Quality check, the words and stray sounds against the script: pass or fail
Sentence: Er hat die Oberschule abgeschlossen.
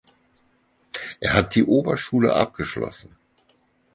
pass